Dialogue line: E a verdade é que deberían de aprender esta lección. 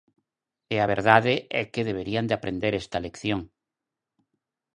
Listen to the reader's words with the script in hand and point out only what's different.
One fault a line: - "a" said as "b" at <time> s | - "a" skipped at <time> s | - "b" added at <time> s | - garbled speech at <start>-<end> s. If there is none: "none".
none